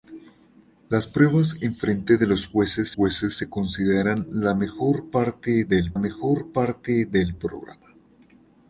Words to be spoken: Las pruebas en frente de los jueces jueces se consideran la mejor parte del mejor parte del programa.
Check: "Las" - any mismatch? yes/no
no